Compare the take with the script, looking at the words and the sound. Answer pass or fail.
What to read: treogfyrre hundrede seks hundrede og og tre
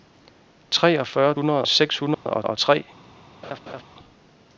fail